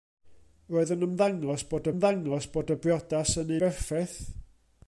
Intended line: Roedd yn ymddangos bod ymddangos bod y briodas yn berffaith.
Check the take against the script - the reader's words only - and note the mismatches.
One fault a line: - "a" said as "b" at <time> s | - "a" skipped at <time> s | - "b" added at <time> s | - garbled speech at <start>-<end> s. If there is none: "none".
none